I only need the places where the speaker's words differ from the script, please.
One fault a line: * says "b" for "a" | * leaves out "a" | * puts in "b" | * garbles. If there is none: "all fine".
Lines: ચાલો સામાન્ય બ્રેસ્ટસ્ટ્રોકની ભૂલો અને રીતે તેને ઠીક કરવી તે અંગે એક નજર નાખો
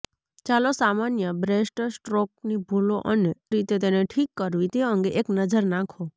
all fine